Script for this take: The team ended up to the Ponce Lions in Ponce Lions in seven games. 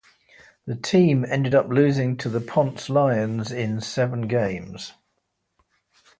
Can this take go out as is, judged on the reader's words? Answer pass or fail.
fail